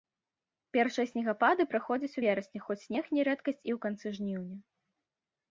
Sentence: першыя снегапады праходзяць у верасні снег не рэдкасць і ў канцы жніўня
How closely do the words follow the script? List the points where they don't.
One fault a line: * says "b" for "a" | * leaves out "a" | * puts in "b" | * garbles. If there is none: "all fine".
* puts in "хоць"